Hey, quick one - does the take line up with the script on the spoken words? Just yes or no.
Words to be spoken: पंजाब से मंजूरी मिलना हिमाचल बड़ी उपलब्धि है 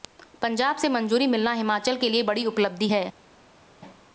no